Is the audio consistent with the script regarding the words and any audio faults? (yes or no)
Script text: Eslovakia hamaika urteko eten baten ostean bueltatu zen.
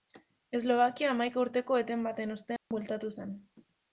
no